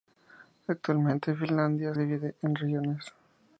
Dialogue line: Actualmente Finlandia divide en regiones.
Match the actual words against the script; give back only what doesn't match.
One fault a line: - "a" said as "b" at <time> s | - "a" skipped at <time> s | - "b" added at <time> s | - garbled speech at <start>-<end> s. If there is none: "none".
none